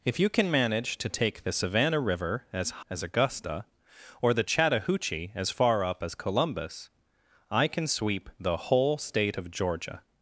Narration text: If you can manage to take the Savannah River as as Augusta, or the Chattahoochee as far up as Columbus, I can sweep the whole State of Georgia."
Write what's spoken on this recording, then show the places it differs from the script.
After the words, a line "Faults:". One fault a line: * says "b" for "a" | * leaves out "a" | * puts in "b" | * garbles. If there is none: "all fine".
If you can manage to take the Savannah River as as Augusta, or the Chattahoochee as far up as Columbus, I can sweep the whole State of Georgia."
Faults:
all fine